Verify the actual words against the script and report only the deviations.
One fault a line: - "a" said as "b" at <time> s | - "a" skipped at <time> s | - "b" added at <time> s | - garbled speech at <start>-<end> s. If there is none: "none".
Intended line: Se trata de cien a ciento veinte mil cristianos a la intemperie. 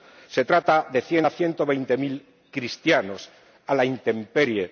none